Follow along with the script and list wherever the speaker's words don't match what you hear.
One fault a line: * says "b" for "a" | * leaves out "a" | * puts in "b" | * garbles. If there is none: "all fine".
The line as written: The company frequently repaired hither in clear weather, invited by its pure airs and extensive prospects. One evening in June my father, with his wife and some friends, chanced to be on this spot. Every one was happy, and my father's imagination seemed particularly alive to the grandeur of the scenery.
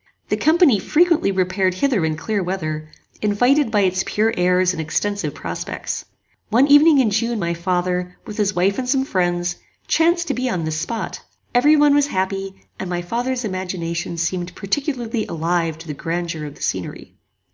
all fine